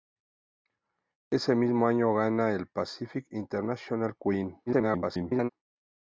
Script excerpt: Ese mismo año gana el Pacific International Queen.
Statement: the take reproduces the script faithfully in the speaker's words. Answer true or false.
false